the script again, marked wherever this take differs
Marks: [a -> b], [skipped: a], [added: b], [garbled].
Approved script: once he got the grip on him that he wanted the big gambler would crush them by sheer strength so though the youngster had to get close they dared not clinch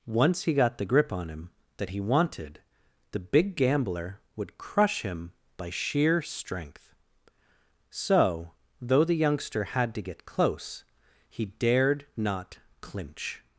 once he got the grip on him that he wanted the big gambler would crush [them -> him] by sheer strength so though the youngster had to get close [they -> he] dared not clinch